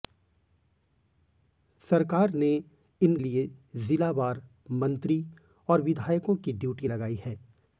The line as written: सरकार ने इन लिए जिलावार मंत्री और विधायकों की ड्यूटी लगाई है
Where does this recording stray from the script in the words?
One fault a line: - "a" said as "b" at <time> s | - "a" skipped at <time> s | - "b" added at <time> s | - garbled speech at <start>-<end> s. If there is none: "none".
none